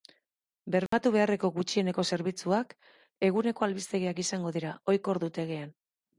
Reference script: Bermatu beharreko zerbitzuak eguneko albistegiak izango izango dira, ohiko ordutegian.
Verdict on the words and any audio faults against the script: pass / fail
fail